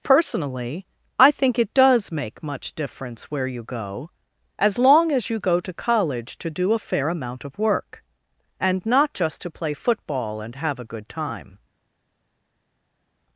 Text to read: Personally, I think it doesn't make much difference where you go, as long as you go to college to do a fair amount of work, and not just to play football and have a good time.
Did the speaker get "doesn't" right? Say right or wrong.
wrong